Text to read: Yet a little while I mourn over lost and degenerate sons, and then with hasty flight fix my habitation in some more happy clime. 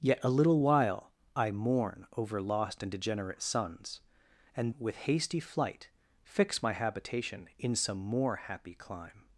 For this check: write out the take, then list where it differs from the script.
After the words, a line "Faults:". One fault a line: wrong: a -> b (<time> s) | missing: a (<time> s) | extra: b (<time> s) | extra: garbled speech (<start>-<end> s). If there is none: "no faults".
Yet a little while I mourn over lost and degenerate sons, and with hasty flight fix my habitation in some more happy clime.
Faults:
missing: then (4.7 s)